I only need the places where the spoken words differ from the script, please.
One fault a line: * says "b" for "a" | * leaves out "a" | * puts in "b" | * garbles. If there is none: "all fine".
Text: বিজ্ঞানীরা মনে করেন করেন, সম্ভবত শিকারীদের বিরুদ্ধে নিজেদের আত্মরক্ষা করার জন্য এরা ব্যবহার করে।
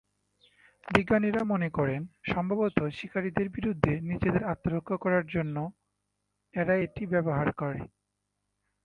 * leaves out "করেন"
* puts in "এটি"